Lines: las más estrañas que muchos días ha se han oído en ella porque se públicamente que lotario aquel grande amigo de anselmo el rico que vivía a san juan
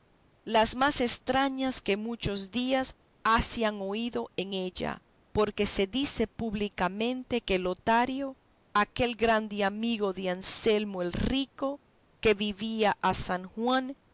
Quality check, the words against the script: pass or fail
fail